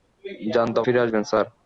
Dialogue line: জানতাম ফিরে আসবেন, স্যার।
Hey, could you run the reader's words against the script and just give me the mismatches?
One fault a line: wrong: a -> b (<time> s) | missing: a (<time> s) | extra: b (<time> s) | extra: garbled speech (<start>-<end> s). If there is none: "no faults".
no faults